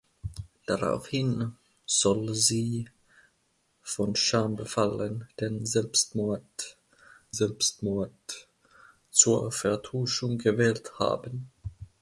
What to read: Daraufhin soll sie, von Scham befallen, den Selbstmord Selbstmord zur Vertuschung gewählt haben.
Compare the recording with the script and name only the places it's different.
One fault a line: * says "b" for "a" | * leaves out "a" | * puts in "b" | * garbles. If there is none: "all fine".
all fine